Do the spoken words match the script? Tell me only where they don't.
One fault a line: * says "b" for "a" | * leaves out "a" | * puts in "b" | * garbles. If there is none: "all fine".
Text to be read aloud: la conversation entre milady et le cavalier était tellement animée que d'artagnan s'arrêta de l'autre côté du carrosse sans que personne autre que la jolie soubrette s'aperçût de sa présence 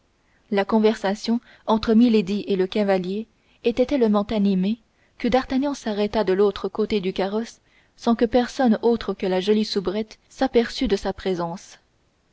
all fine